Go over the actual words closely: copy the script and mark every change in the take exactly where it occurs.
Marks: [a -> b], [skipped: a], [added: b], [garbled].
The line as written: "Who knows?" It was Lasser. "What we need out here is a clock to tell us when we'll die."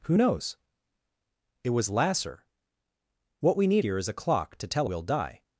"Who knows?" It was Lasser. "What we need [skipped: out] here is a clock to tell [skipped: us when] we'll die."